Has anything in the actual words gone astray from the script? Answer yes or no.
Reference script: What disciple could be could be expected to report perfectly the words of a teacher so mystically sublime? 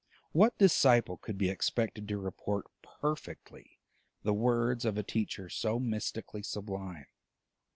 yes